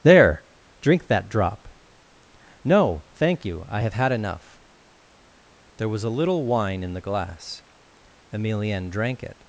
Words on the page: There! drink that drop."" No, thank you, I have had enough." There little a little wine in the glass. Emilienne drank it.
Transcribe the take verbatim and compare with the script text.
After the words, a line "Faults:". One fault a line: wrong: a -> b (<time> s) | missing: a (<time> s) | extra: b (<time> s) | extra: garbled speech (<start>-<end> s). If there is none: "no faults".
There! drink that drop."" No, thank you, I have had enough." There was a little wine in the glass. Emilienne drank it.
Faults:
wrong: little -> was (5.9 s)